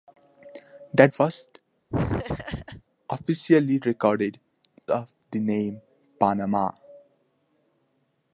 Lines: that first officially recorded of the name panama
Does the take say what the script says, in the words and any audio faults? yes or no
no